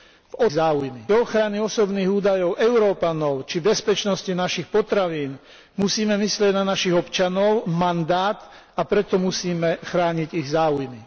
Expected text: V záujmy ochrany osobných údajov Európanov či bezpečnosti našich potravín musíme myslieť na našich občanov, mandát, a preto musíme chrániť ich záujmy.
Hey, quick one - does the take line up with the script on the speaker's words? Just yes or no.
yes